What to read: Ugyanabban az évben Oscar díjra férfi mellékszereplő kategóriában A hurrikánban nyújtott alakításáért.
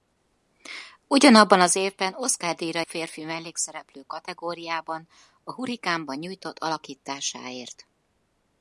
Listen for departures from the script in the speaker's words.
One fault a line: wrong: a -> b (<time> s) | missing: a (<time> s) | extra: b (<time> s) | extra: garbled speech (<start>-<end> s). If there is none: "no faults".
no faults